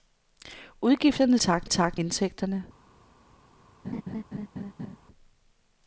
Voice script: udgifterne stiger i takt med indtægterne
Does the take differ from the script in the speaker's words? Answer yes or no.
yes